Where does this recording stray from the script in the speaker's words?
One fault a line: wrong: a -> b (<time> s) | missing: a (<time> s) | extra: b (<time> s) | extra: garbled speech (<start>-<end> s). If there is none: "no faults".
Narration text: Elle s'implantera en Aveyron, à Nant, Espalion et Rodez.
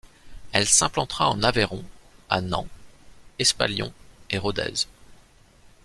no faults